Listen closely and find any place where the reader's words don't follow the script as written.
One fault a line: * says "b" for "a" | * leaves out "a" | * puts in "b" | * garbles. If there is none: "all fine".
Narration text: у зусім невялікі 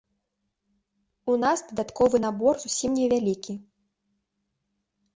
* puts in "нас дадатковы набор"